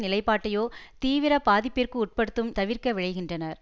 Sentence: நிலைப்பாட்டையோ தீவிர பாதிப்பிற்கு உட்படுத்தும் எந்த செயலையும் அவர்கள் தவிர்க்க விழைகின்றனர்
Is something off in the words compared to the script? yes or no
yes